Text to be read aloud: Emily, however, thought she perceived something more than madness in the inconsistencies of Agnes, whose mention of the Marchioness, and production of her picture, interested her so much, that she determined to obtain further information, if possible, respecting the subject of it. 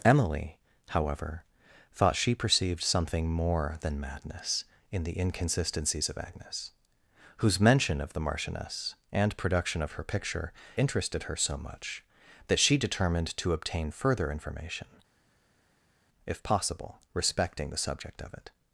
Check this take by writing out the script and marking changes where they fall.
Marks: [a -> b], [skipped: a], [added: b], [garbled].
Emily, however, thought she perceived something more than madness in the inconsistencies of Agnes, whose mention of the Marchioness, and production of her picture, interested her so much, that she determined to obtain further information, if possible, respecting the subject of it.